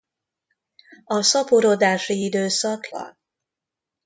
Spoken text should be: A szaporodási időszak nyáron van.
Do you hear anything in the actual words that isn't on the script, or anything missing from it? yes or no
yes